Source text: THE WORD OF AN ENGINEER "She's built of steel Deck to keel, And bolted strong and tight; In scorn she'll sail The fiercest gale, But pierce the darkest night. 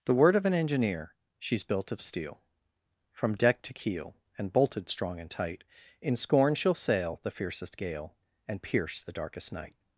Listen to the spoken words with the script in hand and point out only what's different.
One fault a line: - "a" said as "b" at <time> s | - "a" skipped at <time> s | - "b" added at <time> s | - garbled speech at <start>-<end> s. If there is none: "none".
- "From" added at 3.1 s
- "But" said as "And" at 8.5 s